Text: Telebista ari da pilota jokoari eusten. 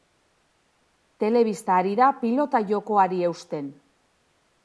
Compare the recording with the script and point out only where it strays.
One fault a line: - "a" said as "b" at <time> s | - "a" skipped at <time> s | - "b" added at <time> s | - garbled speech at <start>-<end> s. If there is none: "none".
none